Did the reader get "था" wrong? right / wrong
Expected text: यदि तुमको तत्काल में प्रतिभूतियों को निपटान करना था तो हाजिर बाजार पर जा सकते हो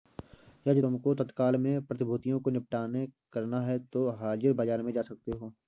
wrong